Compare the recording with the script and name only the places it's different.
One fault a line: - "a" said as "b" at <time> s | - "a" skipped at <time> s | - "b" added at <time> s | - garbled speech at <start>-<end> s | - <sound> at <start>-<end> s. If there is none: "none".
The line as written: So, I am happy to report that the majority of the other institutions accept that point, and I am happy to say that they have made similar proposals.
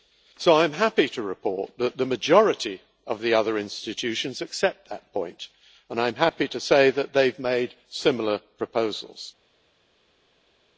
none